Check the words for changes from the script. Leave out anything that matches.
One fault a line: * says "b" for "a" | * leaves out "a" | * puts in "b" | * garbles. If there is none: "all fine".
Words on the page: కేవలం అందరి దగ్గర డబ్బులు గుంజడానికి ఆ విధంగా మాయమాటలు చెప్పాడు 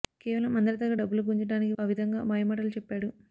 all fine